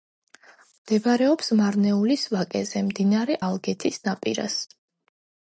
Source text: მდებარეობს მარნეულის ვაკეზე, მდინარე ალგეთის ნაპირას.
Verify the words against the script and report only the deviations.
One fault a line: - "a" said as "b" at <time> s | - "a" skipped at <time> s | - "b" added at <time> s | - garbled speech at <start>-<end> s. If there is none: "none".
none